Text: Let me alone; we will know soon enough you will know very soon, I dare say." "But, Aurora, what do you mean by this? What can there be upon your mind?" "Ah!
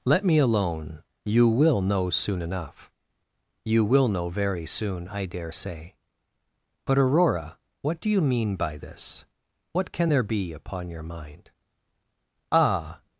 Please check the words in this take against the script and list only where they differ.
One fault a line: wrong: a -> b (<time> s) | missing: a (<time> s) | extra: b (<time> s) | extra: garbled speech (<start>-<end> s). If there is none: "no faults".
wrong: we -> you (1.2 s)